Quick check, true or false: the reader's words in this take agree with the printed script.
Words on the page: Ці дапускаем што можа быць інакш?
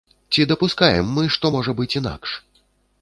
false